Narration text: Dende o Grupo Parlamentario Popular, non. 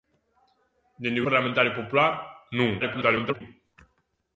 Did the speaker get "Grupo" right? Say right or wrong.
wrong